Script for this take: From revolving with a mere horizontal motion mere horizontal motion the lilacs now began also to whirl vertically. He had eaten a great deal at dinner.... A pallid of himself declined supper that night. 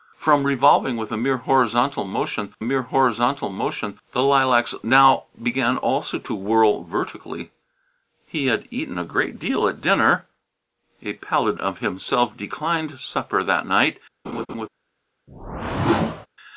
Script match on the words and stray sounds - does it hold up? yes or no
no